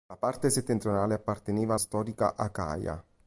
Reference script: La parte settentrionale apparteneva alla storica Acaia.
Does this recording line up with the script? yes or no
no